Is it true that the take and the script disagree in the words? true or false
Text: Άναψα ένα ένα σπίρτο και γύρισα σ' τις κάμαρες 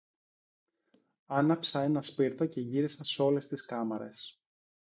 true